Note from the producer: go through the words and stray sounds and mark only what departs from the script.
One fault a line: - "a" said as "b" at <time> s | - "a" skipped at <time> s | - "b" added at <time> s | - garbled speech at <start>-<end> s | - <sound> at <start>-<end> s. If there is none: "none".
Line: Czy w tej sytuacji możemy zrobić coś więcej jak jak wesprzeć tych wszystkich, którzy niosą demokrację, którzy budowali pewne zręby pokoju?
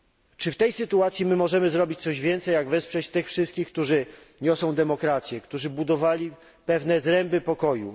- "jak" skipped at 2.7 s